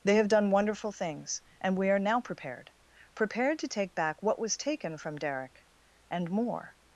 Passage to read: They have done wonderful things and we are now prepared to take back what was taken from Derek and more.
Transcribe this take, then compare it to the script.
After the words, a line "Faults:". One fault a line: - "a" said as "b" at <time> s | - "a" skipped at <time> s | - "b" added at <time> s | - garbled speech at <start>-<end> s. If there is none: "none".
They have done wonderful things and we are now prepared prepared to take back what was taken from Derek and more.
Faults:
- "prepared" added at 3.1 s